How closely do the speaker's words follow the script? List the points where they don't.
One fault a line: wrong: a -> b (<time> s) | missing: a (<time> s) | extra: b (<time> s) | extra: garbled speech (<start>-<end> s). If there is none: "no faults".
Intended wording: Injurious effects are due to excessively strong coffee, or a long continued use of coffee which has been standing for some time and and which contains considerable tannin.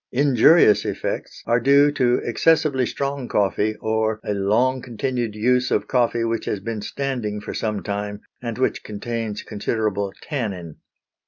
missing: and (8.6 s)